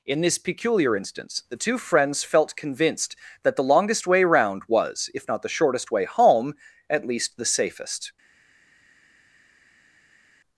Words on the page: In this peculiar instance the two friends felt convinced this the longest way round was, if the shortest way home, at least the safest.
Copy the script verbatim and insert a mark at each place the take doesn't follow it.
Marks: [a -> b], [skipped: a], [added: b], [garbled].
In this peculiar instance the two friends felt convinced [this -> that] the longest way round was, if [added: not] the shortest way home, at least the safest.